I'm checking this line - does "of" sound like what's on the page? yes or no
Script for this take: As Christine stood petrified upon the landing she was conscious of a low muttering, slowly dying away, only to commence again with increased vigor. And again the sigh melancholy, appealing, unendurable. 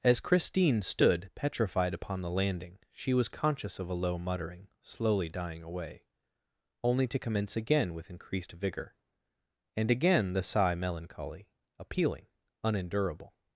yes